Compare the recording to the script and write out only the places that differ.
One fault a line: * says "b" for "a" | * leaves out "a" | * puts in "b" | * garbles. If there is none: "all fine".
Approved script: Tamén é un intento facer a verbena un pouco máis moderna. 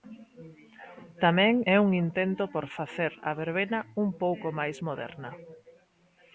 * puts in "por"